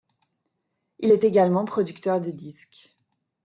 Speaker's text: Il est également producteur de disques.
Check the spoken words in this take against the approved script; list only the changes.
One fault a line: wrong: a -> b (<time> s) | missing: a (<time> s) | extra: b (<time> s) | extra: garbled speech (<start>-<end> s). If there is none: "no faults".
no faults